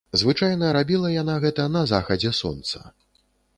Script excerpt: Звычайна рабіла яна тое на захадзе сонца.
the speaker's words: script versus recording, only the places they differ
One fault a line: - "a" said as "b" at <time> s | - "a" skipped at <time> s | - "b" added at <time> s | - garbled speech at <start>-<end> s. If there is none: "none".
- "тое" said as "гэта" at 1.4 s